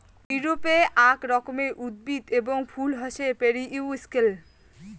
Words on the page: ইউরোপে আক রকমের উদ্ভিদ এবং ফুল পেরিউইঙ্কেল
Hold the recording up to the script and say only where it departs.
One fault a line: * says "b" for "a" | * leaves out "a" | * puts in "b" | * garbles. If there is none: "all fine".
* puts in "হসে"